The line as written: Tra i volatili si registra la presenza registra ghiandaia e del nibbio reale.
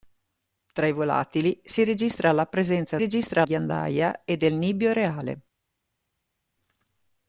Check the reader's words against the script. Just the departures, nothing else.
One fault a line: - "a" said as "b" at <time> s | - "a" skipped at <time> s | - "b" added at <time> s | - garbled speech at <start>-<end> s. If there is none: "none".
none